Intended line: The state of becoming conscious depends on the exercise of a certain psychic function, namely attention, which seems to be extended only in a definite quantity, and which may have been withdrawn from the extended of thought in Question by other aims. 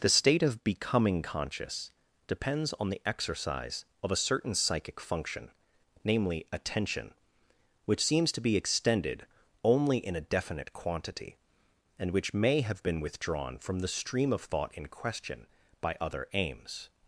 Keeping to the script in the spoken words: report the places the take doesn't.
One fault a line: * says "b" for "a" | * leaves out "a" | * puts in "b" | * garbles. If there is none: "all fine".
* says "stream" for "extended"